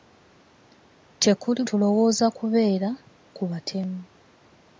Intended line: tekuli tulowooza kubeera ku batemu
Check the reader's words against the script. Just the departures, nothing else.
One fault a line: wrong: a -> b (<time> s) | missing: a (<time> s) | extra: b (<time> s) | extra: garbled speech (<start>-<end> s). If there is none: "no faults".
no faults